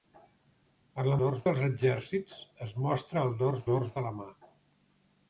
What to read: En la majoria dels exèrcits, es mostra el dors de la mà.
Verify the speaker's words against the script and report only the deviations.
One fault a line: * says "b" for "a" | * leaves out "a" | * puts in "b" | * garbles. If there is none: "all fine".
* says "dors" for "majoria"
* puts in "dors"